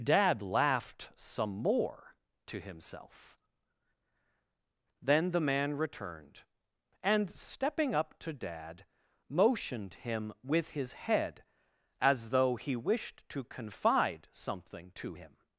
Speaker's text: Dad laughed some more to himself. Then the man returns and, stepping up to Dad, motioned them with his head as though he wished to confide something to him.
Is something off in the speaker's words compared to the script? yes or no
yes